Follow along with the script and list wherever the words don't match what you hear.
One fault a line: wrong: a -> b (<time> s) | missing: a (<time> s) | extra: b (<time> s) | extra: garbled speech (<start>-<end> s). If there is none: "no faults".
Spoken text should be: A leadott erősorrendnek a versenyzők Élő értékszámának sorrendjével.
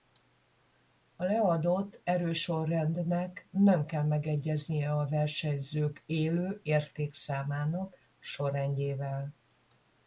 extra: nem kell megegyeznie (3.5 s)